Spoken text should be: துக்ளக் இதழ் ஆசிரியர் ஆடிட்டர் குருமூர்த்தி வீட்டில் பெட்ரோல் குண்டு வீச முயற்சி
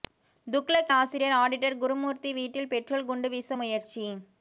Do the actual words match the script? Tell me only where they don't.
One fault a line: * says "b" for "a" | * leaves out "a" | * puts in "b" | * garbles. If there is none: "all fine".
* leaves out "இதழ்"